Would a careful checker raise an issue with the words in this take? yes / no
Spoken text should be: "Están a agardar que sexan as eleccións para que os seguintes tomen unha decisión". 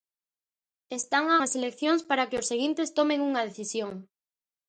yes